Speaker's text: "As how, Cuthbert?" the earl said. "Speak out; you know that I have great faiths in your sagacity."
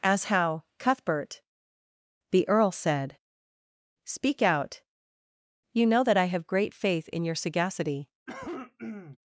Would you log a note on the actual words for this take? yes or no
yes